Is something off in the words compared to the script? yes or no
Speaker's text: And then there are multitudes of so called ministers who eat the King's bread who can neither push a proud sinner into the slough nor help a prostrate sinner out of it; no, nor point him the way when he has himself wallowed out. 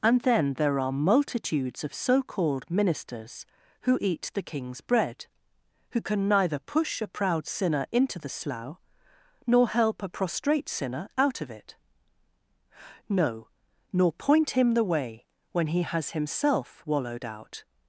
no